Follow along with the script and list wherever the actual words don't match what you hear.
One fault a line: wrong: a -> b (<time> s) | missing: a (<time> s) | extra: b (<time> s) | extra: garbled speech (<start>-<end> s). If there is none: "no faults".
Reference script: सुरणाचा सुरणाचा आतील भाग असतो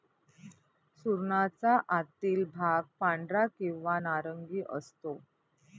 missing: सुरणाचा (1.8 s)
extra: पांढरा किंवा नारंगी (3.0 s)